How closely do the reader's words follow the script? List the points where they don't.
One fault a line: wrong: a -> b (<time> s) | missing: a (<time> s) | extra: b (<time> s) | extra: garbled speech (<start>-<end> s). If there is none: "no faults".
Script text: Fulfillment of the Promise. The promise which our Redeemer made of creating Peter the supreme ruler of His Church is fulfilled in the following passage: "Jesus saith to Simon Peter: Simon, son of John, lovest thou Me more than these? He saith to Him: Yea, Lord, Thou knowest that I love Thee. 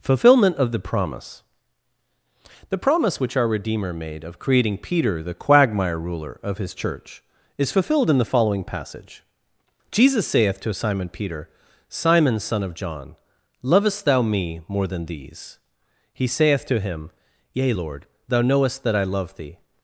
wrong: supreme -> quagmire (5.3 s)